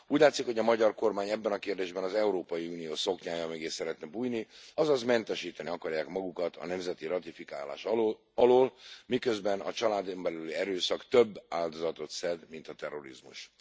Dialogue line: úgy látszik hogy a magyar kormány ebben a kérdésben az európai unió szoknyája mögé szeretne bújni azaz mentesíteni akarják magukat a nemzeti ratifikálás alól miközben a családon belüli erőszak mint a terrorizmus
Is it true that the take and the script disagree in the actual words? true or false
true